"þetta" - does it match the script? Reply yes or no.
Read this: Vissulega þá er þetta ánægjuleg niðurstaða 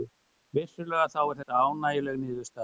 yes